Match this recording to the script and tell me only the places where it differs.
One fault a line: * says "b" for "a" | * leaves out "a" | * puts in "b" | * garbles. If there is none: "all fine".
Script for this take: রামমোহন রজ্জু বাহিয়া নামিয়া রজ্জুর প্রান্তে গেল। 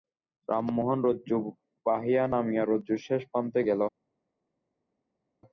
* puts in "শেষ"